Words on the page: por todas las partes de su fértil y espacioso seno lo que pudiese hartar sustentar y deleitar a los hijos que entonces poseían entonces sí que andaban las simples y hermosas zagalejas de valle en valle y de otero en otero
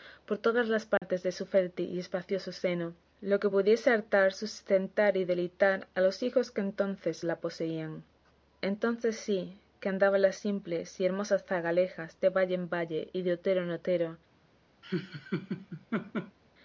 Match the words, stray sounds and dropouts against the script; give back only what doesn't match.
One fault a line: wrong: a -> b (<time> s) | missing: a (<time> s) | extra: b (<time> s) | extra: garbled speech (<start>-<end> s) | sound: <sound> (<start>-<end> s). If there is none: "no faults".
sound: dropout (1.0-1.0 s)
extra: la (7.2 s)
sound: laugh (14.8-16.4 s)